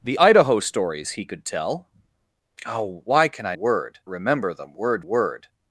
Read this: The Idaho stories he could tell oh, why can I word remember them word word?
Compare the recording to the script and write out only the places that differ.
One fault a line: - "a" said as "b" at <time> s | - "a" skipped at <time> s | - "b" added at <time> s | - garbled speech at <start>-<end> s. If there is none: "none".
none